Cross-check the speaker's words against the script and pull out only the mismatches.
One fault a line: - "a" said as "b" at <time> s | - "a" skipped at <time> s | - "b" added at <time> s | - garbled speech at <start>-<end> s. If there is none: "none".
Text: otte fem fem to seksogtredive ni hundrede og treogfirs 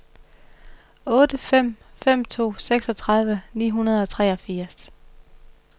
none